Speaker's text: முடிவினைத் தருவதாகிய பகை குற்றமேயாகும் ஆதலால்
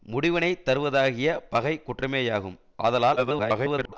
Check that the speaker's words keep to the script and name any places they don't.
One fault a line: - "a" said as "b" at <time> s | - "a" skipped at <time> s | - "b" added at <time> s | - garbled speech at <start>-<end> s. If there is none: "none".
- garbled speech at 3.2-3.9 s